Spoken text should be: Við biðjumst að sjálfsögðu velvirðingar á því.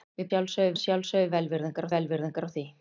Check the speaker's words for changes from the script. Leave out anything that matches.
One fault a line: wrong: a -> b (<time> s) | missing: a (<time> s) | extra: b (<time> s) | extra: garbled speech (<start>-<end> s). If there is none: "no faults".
wrong: biðjumst -> sjálfsögðu (0.3 s)
extra: velvirðingar (2.0 s)